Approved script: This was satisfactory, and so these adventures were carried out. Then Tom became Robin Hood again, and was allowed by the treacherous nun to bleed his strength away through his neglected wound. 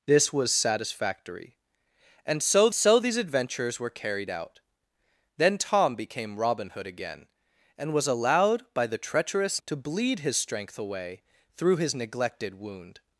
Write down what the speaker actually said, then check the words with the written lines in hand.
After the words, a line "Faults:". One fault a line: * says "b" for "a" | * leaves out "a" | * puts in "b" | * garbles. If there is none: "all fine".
This was satisfactory, and so so these adventures were carried out. Then Tom became Robin Hood again, and was allowed by the treacherous to bleed his strength away through his neglected wound.
Faults:
* puts in "so"
* leaves out "nun"